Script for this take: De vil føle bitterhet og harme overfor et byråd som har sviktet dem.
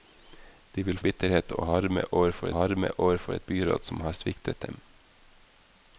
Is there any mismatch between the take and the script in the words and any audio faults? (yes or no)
yes